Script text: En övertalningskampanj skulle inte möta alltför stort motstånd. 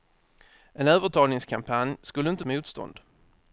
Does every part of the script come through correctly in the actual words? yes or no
no